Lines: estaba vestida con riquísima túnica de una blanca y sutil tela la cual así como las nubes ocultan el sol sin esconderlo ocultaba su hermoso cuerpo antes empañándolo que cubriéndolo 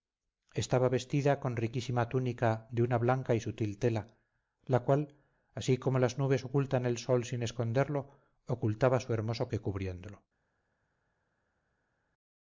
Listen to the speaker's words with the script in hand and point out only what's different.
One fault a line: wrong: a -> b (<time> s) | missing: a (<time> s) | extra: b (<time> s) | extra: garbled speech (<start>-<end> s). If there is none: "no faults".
missing: cuerpo antes empañándolo (9.5 s)